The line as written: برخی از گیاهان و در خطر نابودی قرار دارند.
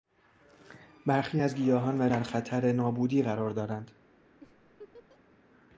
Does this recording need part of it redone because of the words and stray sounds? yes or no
yes